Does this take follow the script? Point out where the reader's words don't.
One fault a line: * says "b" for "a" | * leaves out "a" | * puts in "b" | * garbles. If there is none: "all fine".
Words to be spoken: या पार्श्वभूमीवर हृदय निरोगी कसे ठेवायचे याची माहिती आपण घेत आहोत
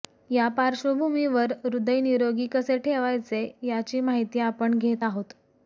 all fine